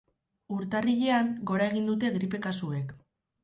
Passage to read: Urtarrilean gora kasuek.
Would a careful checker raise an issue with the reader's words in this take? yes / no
yes